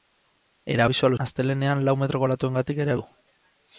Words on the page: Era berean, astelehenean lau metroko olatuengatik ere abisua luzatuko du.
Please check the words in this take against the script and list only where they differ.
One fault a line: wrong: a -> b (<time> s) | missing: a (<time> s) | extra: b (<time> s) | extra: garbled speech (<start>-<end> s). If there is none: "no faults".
wrong: berean -> abisua (0.9 s)
missing: abisua luzatuko (3.0 s)